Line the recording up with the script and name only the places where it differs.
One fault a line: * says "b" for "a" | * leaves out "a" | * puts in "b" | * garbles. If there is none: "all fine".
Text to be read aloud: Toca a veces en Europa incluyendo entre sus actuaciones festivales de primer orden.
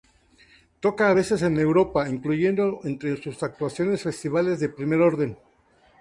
all fine